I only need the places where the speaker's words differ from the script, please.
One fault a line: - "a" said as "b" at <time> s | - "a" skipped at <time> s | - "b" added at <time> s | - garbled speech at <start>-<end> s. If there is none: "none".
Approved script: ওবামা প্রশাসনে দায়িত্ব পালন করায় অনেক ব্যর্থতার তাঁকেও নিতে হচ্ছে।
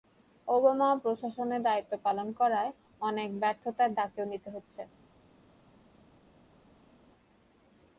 none